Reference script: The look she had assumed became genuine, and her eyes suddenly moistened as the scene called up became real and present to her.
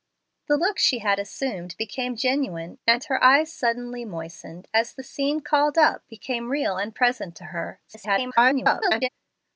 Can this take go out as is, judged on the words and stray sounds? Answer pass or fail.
fail